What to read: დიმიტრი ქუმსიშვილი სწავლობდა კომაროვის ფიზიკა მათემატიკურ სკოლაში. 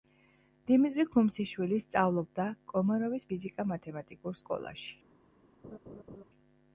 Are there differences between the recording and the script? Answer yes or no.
no